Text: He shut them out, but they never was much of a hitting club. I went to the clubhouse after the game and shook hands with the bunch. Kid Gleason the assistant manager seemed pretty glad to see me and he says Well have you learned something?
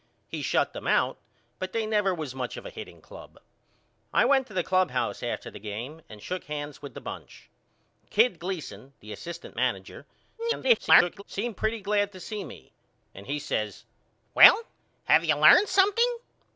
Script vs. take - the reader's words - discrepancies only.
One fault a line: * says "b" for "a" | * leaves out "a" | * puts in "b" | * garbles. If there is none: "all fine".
* garbles